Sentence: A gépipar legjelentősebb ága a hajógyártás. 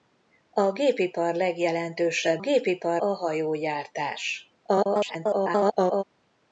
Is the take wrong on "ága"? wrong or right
wrong